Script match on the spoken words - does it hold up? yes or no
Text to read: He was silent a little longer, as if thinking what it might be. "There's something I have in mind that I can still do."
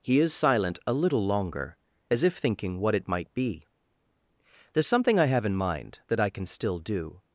no